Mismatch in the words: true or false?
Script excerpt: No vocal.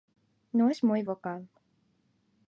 true